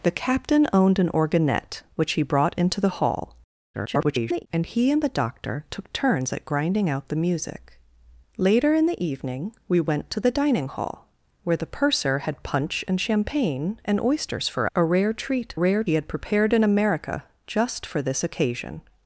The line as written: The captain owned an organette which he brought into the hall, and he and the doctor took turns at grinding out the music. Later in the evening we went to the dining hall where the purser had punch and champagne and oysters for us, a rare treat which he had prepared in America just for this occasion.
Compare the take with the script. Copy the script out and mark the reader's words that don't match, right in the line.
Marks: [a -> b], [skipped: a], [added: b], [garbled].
The captain owned an organette which he brought into the hall, [garbled] and he and the doctor took turns at grinding out the music. Later in the evening we went to the dining hall where the purser had punch and champagne and oysters for [skipped: us,] a rare treat [which -> rare] he had prepared in America just for this occasion.